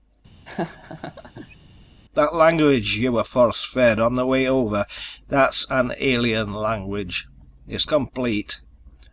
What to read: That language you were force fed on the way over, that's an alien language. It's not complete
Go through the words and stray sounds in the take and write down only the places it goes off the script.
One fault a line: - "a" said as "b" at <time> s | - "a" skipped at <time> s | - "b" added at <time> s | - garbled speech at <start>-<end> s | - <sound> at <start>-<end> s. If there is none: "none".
- laugh at 0.5-1.6 s
- "not" skipped at 7.9 s